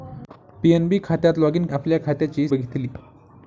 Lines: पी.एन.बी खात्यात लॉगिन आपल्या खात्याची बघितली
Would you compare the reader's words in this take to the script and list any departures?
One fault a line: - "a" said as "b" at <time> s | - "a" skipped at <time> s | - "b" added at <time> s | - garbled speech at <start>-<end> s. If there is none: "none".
none